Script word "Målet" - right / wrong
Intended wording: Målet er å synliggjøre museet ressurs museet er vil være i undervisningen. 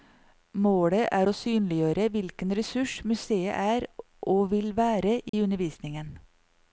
right